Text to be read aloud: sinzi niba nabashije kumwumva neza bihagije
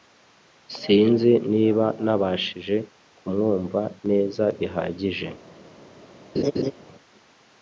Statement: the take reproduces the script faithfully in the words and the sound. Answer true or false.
false